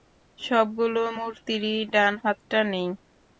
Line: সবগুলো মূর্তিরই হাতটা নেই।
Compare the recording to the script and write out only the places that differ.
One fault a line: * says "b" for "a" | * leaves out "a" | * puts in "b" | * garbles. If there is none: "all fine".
* puts in "ডান"